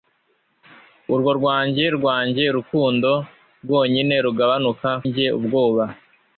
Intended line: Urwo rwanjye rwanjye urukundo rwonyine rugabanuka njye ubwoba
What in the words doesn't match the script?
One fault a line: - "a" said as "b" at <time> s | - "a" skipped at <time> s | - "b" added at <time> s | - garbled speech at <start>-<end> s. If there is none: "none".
none